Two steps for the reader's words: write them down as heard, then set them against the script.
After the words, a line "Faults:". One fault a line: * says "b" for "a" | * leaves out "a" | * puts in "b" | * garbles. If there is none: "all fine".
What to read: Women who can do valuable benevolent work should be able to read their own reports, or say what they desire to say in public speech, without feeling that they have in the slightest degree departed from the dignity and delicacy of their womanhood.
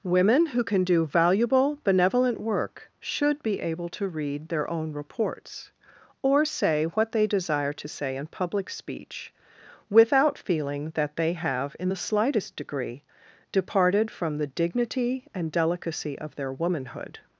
Women who can do valuable benevolent work should be able to read their own reports, or say what they desire to say in public speech, without feeling that they have in the slightest degree departed from the dignity and delicacy of their womanhood.
Faults:
all fine